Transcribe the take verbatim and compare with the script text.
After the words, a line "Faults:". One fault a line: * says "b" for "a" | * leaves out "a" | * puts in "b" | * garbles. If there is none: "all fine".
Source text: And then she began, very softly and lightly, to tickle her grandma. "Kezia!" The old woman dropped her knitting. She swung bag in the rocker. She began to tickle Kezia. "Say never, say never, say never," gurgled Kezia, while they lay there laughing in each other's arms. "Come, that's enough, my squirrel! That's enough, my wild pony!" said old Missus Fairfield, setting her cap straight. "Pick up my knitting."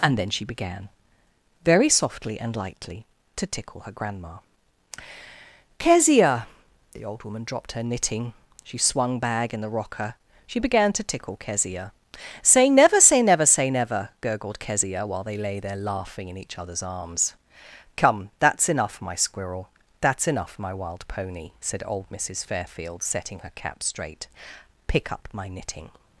And then she began, very softly and lightly, to tickle her grandma. "Kezia!" The old woman dropped her knitting. She swung bag in the rocker. She began to tickle Kezia. "Say never, say never, say never," gurgled Kezia, while they lay there laughing in each other's arms. "Come, that's enough, my squirrel! That's enough, my wild pony!" said old Missus Fairfield, setting her cap straight. "Pick up my knitting."
Faults:
all fine